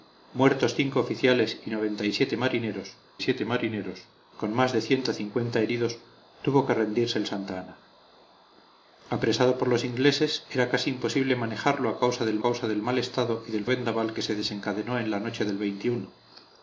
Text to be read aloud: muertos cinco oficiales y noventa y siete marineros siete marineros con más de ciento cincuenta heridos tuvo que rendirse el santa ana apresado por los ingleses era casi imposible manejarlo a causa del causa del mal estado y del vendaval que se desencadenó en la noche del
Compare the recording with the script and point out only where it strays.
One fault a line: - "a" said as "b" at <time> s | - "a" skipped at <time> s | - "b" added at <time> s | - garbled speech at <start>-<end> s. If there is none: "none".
none